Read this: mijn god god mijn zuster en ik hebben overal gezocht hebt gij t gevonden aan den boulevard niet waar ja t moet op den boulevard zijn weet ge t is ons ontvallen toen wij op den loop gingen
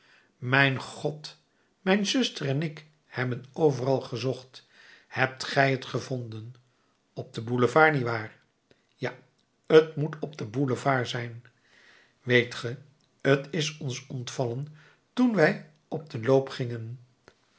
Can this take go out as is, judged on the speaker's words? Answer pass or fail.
fail